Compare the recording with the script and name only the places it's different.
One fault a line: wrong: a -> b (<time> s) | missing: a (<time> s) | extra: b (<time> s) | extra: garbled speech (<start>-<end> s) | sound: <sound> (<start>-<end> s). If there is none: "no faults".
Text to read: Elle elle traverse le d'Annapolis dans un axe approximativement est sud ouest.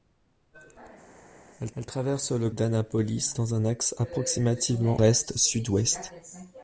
no faults